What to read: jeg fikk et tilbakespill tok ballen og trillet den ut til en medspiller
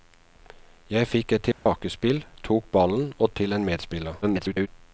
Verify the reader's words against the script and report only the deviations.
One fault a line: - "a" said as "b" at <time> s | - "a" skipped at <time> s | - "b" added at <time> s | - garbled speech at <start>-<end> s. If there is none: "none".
- "trillet den ut" skipped at 3.3 s
- garbled speech at 4.2-4.7 s